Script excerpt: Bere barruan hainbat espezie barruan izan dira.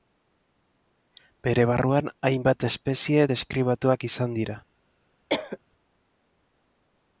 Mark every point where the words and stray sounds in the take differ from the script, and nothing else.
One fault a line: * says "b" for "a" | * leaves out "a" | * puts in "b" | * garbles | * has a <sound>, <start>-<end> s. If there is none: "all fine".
* says "deskribatuak" for "barruan"
* has a cough, 5.3-5.6 s